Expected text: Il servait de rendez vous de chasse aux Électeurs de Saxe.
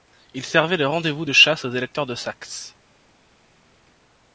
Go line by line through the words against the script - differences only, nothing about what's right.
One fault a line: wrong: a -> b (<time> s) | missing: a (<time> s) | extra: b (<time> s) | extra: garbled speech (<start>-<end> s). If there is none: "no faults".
no faults